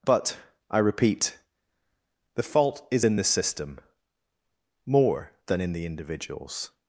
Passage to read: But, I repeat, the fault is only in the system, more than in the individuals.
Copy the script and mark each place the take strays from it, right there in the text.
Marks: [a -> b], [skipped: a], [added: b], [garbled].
But, I repeat, the fault is [skipped: only] in the system, more than in the individuals.